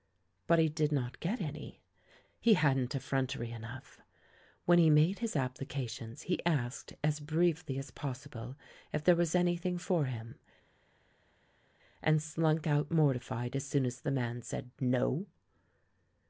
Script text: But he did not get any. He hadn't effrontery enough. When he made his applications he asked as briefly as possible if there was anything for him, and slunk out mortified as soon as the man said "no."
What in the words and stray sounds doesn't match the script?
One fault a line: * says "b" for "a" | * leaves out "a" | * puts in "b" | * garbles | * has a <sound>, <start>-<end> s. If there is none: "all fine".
all fine